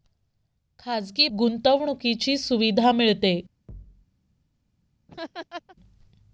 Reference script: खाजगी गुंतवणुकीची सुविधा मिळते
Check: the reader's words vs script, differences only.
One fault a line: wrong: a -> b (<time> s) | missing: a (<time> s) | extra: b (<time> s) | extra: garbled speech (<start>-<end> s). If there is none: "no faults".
no faults